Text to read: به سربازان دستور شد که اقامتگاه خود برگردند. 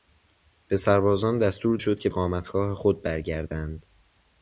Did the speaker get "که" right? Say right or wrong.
right